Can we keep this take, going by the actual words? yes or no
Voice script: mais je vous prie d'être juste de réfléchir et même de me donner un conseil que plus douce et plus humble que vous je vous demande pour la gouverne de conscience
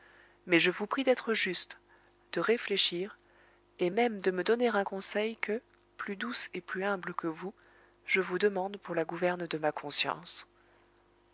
no